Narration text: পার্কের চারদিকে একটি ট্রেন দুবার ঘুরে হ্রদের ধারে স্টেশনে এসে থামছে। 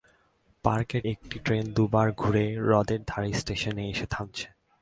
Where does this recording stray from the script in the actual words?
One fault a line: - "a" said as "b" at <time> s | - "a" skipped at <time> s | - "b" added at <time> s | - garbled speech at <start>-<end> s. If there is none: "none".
- "চারদিকে" skipped at 1.0 s